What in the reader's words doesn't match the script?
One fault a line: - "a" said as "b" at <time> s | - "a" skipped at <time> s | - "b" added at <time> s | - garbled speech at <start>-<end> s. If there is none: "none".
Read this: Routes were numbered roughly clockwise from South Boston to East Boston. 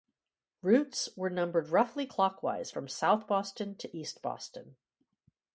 none